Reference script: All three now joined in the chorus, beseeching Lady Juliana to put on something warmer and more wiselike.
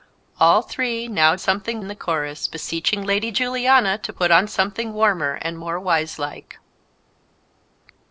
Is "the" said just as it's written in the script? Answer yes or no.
yes